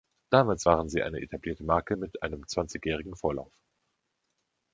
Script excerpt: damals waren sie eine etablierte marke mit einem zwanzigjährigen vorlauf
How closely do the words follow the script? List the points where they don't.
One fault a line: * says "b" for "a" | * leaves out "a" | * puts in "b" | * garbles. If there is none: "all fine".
all fine